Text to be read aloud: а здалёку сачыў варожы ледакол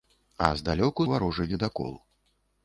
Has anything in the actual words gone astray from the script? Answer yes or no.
yes